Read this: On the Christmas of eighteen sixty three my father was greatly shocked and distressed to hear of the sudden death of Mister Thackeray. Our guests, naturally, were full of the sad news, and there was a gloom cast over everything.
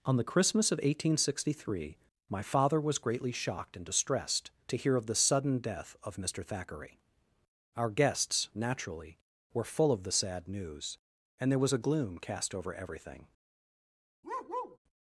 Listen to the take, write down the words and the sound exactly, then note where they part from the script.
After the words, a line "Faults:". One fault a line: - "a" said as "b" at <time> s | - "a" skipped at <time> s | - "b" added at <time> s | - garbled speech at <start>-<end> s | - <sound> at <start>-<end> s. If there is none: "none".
On the Christmas of eighteen sixty three my father was greatly shocked and distressed to hear of the sudden death of Mister Thackeray. Our guests, naturally, were full of the sad news, and there was a gloom cast over everything.
Faults:
- bark at 14.2-14.8 s